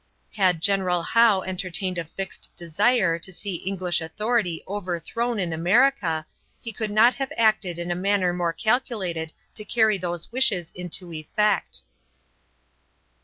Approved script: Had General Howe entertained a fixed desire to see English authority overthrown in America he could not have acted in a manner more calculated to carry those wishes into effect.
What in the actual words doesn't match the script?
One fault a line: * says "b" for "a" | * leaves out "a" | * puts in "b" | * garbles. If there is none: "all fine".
all fine